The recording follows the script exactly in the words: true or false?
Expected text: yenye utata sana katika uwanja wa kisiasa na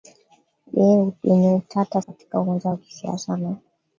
false